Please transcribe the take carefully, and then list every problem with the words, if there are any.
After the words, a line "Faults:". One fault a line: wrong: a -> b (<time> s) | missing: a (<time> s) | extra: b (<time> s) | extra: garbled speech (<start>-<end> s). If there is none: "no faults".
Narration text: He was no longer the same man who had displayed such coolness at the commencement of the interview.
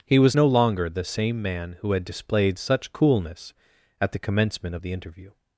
He was no longer the same man who had displayed such coolness at the commencement of the interview.
Faults:
no faults